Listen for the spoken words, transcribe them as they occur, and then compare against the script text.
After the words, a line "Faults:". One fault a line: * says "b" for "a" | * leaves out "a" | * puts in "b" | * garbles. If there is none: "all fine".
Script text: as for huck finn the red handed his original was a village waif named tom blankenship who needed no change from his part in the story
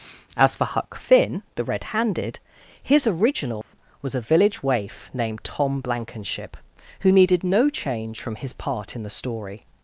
as for huck finn the red handed his original was a village waif named tom blankenship who needed no change from his part in the story
Faults:
all fine